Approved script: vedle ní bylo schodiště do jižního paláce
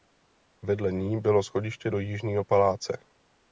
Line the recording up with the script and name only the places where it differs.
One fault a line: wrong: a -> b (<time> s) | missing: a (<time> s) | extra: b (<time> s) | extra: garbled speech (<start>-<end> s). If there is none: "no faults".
no faults